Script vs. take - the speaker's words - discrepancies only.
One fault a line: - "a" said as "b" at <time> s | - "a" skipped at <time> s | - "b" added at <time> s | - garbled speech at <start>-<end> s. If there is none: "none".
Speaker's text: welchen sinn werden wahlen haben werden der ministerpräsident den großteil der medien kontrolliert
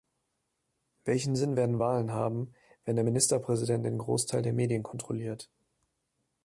- "werden" said as "wenn" at 2.8 s